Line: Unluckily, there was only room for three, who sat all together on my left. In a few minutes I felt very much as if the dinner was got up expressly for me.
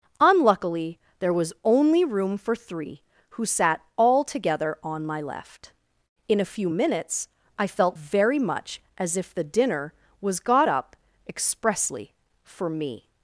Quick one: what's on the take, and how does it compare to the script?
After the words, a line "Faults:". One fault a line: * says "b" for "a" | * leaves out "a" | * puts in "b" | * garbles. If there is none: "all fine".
Unluckily, there was only room for three, who sat all together on my left. In a few minutes I felt very much as if the dinner was got up expressly for me.
Faults:
all fine